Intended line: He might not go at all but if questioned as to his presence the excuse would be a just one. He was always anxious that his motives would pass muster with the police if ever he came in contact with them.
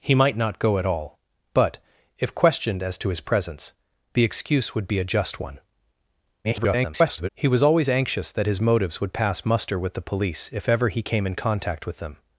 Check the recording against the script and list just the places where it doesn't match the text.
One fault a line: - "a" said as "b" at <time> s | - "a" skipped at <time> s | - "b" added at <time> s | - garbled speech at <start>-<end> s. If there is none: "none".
- garbled speech at 6.4-7.3 s